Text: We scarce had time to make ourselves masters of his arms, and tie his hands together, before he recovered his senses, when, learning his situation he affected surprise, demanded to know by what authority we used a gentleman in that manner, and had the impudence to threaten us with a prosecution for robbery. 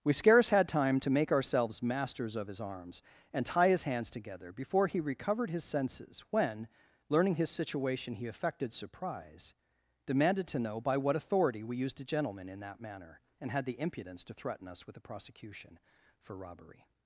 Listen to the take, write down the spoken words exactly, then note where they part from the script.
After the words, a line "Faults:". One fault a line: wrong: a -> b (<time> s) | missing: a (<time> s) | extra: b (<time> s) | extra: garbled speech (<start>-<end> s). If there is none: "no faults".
We scarce had time to make ourselves masters of his arms, and tie his hands together, before he recovered his senses, when, learning his situation he affected surprise, demanded to know by what authority we used a gentleman in that manner, and had the impudence to threaten us with a prosecution for robbery.
Faults:
no faults